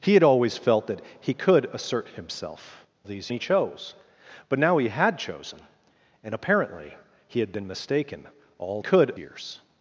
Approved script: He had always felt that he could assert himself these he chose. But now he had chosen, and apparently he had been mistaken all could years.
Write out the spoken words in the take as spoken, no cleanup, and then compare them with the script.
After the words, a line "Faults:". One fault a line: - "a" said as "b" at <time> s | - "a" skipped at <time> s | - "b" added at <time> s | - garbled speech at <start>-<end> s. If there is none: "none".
He had always felt that he could assert himself these he chose. But now he had chosen, and apparently he had been mistaken all could years.
Faults:
none